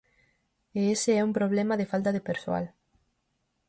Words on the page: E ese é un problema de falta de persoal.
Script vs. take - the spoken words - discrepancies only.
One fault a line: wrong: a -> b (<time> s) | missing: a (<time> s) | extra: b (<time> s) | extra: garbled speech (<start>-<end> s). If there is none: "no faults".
no faults